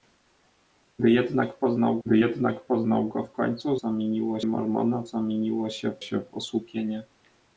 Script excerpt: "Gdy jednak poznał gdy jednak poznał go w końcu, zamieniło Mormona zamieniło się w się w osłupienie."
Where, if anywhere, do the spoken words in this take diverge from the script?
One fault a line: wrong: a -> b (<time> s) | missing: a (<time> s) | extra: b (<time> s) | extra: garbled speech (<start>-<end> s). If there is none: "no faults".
no faults